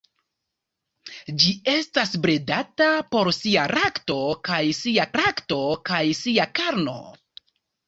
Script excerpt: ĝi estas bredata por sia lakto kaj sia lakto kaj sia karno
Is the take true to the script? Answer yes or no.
yes